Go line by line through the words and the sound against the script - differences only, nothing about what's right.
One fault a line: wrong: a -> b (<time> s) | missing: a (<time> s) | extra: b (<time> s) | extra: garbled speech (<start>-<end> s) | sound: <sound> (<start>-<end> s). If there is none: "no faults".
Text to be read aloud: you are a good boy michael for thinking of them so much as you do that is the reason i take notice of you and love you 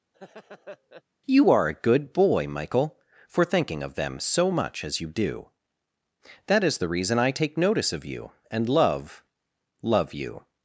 sound: laugh (0.1-1.0 s)
extra: love (9.8 s)